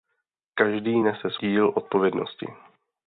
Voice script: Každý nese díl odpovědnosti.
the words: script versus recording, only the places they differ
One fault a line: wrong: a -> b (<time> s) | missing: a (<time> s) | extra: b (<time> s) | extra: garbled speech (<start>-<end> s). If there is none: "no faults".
no faults